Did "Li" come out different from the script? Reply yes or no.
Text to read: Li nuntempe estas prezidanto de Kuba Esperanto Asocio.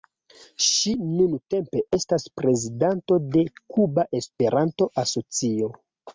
yes